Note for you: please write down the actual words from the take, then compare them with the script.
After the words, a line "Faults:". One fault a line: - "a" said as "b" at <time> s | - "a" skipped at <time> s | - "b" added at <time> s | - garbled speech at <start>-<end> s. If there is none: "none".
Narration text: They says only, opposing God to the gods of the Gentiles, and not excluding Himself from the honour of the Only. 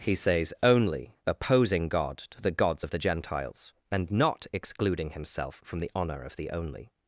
He says only, opposing God to the gods of the Gentiles, and not excluding Himself from the honour of the Only.
Faults:
- "They" said as "He" at 0.0 s